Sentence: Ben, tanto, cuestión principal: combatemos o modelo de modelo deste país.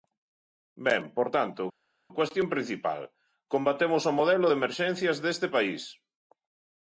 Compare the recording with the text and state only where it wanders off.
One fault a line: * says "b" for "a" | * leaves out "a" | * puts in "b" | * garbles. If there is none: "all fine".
* puts in "por"
* says "emerxencias" for "modelo"